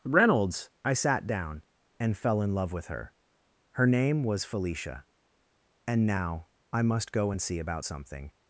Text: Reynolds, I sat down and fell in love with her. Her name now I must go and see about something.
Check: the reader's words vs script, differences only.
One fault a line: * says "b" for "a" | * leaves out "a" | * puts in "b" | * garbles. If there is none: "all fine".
* puts in "was Felicia And"